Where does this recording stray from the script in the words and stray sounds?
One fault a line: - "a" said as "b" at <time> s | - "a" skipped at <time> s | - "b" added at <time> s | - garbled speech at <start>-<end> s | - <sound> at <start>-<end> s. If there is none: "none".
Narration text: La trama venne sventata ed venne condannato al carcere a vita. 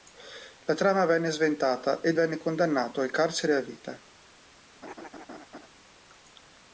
- laugh at 4.8-5.7 s